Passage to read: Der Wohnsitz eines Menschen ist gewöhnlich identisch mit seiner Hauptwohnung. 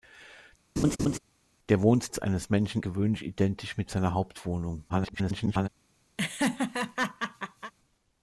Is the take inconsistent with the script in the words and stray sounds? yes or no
yes